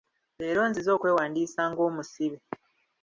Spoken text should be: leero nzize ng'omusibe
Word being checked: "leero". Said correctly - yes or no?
yes